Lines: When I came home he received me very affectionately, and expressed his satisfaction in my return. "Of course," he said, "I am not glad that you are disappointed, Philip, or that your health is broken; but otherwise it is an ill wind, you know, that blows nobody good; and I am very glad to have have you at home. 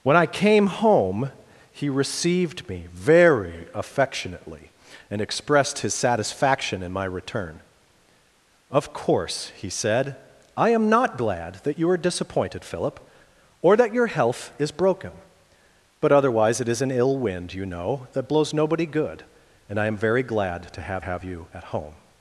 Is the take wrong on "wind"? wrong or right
right